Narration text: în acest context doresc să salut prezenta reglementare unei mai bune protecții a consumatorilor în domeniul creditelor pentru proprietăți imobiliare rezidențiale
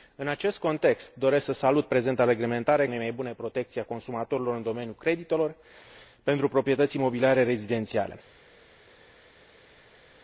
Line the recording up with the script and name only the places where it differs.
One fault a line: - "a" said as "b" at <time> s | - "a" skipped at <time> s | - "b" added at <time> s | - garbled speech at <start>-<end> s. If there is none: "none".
none